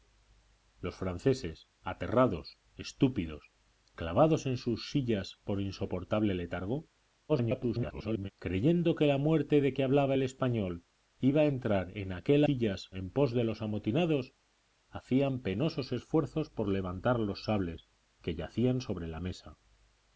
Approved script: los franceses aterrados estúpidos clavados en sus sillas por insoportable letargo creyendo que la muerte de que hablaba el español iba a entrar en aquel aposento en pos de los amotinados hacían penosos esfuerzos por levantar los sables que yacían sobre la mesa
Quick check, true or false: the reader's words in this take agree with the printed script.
false